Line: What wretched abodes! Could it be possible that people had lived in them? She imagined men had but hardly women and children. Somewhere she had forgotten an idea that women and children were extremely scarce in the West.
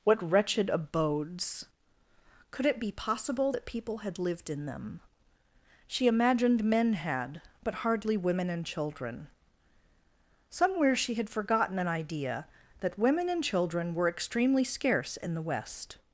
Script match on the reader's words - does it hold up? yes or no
yes